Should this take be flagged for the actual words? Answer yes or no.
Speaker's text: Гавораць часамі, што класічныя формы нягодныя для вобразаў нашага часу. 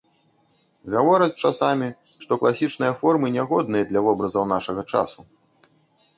no